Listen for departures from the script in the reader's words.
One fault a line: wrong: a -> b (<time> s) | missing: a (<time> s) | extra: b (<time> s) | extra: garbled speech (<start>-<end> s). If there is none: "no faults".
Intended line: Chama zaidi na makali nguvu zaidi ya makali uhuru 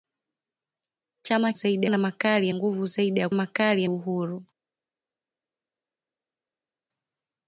no faults